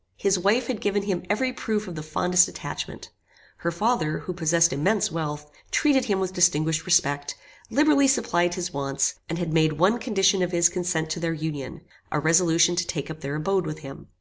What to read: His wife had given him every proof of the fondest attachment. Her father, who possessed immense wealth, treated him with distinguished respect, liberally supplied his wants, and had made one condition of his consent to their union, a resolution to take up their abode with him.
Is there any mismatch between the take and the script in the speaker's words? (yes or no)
no